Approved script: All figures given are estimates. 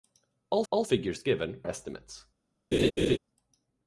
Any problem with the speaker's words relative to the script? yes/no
yes